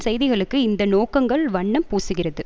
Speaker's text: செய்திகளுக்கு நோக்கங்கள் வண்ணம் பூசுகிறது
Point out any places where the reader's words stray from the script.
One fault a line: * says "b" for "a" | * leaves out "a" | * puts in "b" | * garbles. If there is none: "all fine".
* puts in "இந்த"